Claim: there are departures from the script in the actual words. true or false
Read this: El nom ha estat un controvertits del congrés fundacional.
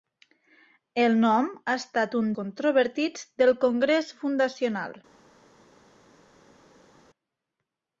false